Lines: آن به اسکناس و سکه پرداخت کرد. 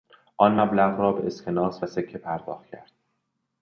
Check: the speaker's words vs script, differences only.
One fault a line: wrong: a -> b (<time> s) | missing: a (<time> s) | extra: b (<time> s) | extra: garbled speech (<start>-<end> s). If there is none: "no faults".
extra: مبلغ را (0.6 s)